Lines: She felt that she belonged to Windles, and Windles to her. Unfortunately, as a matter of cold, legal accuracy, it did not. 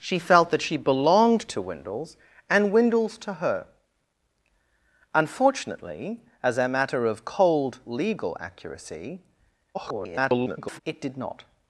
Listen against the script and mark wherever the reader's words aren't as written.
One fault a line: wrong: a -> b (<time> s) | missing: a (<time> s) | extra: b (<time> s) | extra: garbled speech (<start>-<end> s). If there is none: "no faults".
extra: garbled speech (9.7-10.8 s)